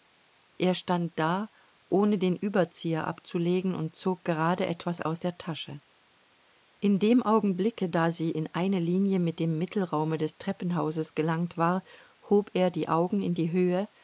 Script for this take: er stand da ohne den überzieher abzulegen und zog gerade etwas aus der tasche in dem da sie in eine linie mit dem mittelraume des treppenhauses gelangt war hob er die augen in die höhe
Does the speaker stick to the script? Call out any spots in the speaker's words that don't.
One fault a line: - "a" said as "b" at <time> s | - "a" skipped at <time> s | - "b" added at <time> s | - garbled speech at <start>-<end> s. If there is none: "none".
- "augenblicke" added at 7.2 s